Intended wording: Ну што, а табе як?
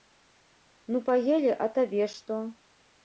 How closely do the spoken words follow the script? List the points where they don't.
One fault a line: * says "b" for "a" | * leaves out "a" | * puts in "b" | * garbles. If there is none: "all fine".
* says "паелі" for "што"
* says "што" for "як"